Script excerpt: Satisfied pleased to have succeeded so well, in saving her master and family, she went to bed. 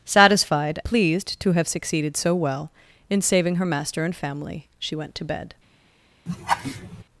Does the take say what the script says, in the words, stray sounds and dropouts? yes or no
no